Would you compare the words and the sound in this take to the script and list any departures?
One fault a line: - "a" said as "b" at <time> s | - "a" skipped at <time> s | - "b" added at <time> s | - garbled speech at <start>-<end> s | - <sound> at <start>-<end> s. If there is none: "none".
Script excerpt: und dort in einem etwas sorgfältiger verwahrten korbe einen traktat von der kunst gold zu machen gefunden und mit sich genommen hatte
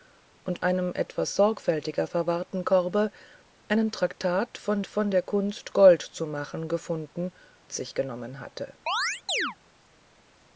- "dort in" skipped at 0.7 s
- "von" added at 4.9 s
- "und mit" skipped at 7.3 s
- chirp at 8.9-9.6 s